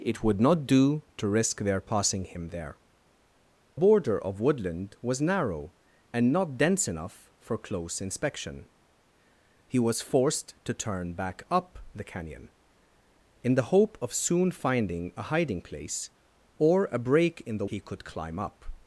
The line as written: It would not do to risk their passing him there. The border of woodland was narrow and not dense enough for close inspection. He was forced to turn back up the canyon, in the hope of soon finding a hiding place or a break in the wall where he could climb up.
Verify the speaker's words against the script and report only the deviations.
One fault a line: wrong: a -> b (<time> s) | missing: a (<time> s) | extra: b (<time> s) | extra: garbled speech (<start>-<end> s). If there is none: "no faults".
missing: The (2.8 s)
missing: wall where (17.7 s)